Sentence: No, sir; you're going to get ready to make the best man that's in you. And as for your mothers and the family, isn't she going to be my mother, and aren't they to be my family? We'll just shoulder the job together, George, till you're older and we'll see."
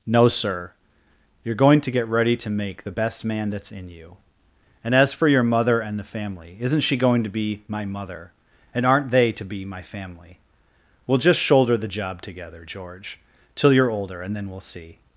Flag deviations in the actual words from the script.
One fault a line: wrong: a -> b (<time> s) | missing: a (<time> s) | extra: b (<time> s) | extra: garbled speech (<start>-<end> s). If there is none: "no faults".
wrong: mothers -> mother (5.4 s)
extra: then (14.4 s)